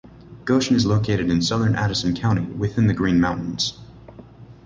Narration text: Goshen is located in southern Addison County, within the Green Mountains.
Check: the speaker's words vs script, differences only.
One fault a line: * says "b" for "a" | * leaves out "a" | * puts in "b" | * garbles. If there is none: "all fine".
all fine